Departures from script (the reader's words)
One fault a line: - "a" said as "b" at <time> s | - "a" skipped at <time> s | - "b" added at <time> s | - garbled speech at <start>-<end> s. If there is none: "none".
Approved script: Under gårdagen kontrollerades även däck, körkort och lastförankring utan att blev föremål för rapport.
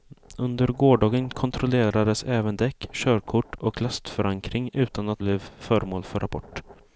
none